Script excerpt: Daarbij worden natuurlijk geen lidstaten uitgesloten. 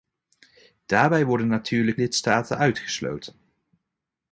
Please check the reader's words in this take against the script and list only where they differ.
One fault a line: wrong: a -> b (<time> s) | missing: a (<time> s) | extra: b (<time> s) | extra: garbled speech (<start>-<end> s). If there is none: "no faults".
missing: geen (2.0 s)